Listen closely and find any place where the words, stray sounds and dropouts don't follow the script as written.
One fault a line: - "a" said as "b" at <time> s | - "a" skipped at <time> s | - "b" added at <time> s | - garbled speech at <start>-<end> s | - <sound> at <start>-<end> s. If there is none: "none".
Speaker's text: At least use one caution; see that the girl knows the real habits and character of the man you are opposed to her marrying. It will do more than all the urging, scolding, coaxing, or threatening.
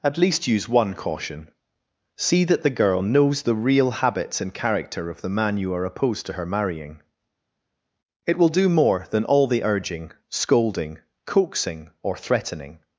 none